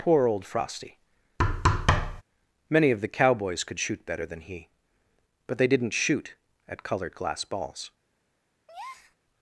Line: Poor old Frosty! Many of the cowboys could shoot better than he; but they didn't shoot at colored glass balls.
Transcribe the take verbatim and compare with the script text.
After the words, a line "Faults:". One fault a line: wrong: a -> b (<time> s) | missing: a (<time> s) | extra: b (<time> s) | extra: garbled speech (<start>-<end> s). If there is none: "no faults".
Poor old Frosty! Many of the cowboys could shoot better than he; but they didn't shoot at colored glass balls.
Faults:
no faults